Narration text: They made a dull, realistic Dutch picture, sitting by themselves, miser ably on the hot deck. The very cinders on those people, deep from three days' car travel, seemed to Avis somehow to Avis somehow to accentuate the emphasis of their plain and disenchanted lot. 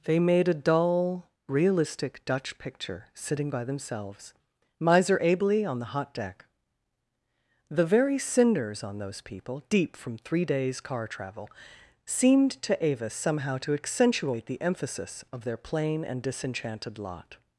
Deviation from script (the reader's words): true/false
true